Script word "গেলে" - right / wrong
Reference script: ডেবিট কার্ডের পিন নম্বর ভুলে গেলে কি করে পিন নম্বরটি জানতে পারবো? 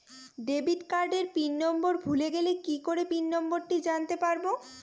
right